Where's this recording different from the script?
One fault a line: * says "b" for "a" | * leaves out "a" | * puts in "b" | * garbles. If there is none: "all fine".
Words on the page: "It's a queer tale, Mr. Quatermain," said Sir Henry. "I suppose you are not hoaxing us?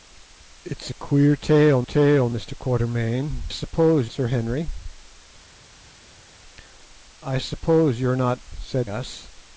* puts in "tale"
* says "suppose" for "said"
* says "said" for "hoaxing"